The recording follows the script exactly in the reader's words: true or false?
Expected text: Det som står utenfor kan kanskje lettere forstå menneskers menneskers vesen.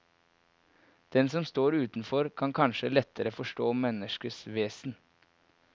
false